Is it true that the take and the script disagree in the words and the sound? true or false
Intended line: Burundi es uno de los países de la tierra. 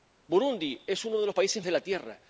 false